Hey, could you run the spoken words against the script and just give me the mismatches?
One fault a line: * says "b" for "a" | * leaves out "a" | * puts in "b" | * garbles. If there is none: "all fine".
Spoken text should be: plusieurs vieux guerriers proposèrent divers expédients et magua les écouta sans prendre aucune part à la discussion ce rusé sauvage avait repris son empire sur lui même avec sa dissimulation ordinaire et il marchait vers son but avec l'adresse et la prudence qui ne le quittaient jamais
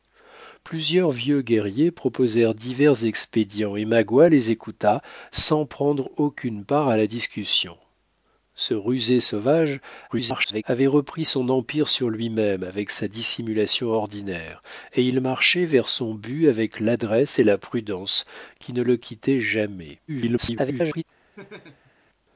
* garbles
* garbles